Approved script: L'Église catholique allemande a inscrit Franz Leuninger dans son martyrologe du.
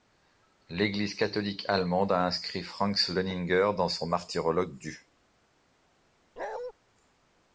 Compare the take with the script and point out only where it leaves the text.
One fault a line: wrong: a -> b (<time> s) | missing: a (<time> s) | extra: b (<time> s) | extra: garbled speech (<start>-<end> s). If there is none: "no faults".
no faults